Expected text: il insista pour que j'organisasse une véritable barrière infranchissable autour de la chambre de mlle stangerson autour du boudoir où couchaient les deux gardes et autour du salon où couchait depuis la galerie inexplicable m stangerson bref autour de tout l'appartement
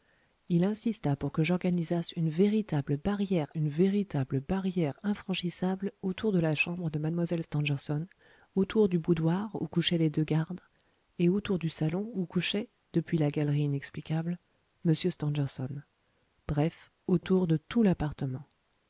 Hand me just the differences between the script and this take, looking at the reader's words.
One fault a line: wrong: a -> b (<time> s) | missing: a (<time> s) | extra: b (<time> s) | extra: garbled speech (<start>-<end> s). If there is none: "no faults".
extra: une véritable barrière (3.5 s)